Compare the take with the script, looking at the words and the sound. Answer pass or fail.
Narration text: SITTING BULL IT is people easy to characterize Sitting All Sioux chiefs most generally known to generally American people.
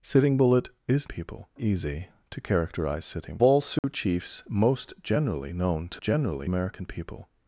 fail